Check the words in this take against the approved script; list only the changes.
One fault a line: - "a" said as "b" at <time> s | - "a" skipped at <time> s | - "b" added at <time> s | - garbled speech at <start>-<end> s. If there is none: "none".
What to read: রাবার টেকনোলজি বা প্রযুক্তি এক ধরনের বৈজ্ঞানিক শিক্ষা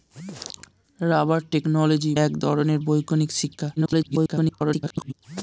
- "বা প্রযুক্তি" skipped at 2.1 s
- garbled speech at 3.8-5.1 s